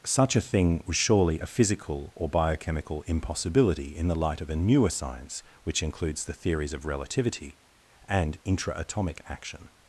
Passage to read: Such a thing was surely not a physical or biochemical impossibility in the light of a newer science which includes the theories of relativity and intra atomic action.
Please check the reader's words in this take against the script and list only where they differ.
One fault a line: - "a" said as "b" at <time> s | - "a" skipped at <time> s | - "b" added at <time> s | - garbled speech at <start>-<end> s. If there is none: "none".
- "not" skipped at 1.4 s